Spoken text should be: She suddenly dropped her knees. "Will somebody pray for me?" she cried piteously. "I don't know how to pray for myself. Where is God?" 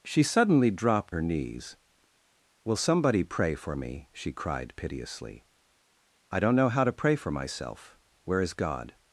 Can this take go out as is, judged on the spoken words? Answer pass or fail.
pass